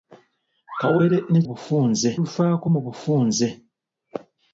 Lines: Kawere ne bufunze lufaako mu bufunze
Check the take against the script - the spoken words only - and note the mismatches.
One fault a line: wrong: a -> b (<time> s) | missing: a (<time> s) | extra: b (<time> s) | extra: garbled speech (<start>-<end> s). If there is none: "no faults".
no faults